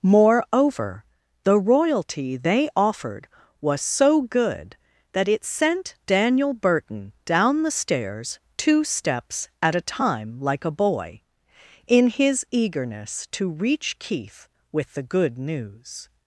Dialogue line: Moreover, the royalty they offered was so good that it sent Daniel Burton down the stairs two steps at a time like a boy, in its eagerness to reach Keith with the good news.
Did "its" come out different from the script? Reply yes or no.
yes